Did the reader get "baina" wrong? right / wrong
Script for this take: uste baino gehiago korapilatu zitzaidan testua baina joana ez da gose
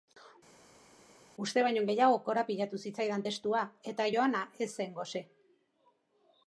wrong